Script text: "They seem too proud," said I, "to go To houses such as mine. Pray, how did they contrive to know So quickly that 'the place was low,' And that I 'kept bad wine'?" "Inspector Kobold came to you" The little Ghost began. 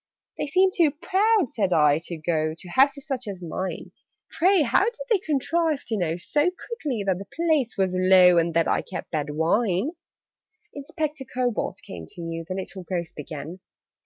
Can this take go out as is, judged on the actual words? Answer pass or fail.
pass